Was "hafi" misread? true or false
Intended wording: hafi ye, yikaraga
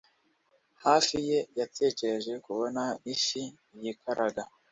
false